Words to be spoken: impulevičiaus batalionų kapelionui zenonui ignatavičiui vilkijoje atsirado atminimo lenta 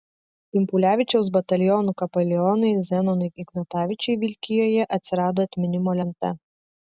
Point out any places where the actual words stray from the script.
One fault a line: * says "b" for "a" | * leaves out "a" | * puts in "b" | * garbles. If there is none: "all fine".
all fine